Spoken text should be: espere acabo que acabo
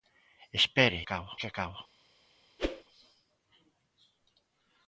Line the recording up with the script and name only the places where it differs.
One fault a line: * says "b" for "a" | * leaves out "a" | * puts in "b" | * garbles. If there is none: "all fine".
all fine